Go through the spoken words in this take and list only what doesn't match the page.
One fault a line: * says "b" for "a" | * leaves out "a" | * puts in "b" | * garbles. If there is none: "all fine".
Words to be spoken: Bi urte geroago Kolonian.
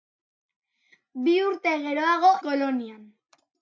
all fine